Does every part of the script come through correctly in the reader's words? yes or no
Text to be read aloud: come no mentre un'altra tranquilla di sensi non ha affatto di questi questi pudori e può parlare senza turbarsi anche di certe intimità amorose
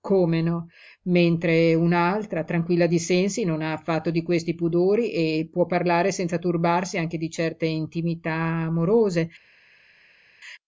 no